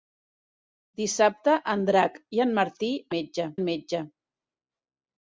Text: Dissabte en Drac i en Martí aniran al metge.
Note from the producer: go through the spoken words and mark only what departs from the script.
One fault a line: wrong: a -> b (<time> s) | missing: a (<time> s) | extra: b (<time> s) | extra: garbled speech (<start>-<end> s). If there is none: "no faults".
wrong: aniran -> metge (3.2 s)